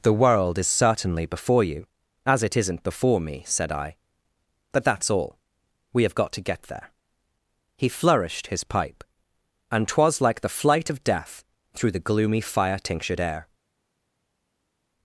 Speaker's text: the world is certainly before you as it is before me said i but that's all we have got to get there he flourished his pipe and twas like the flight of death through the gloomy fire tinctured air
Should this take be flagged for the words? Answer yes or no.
yes